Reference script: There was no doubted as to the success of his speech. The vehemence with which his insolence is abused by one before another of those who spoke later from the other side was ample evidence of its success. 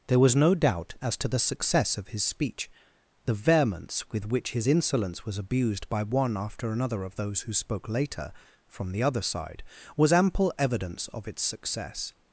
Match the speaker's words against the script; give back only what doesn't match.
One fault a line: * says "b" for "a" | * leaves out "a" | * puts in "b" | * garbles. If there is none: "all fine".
* says "doubt" for "doubted"
* says "was" for "is"
* says "after" for "before"